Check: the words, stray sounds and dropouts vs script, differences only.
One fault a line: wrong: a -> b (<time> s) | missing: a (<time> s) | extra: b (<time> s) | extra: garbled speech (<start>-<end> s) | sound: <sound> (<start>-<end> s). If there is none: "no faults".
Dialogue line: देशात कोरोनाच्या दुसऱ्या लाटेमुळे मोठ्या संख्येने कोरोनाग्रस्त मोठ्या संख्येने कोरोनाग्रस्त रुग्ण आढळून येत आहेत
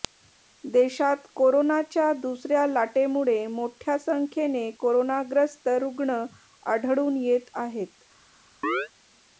missing: मोठ्या संख्येने कोरोनाग्रस्त (5.7 s)
sound: chirp (8.6-8.9 s)